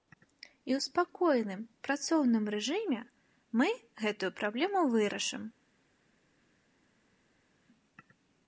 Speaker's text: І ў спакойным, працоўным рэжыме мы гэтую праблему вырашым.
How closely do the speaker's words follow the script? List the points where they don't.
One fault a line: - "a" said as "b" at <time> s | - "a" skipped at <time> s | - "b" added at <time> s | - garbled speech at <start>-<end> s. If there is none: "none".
none